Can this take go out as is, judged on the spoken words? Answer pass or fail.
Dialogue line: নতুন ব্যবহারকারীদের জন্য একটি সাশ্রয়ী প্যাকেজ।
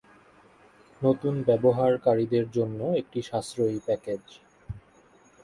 pass